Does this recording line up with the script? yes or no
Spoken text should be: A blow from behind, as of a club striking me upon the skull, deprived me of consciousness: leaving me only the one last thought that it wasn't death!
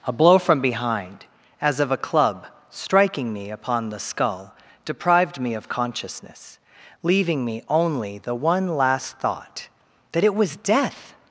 no